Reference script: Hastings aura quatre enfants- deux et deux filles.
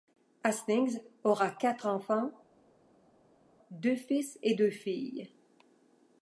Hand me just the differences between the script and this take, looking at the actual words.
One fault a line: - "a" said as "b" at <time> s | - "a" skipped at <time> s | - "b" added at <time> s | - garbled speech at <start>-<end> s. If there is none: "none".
- "fils" added at 4.0 s